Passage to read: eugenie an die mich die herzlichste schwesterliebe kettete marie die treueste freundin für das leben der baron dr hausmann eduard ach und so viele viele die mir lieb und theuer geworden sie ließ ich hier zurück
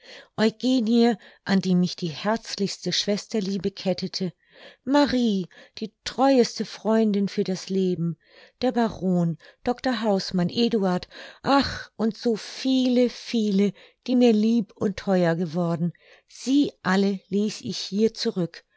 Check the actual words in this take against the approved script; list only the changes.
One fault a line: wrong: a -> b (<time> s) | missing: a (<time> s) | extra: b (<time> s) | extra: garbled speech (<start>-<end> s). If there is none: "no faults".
extra: alle (16.8 s)